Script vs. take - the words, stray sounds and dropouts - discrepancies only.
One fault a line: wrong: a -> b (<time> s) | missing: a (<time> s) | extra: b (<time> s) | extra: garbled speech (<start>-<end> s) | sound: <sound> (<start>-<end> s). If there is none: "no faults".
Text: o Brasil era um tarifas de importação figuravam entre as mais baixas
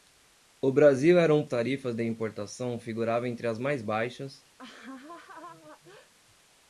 sound: laugh (4.6-6.1 s)